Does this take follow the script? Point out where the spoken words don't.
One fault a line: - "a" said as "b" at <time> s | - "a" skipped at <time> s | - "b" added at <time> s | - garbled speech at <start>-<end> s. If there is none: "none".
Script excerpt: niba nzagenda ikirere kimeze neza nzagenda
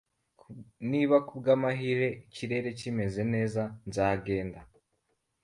- "nzagenda" said as "kubwamahirwe" at 1.3 s